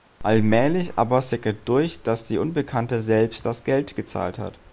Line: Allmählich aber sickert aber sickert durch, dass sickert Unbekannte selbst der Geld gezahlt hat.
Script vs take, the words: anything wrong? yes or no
yes